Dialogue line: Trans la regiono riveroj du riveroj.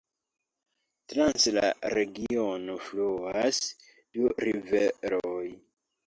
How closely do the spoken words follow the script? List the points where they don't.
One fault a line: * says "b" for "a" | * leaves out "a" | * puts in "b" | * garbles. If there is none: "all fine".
* says "fluas" for "riveroj"